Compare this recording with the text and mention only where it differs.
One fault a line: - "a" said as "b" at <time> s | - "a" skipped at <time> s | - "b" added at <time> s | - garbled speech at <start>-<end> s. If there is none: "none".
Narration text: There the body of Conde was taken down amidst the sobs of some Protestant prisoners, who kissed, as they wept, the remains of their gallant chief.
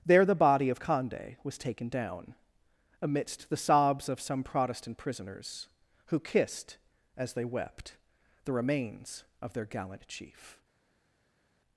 none